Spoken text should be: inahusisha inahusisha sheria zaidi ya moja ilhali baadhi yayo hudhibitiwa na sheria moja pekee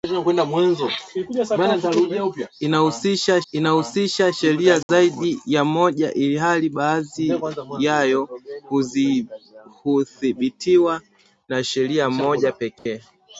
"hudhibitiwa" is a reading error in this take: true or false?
false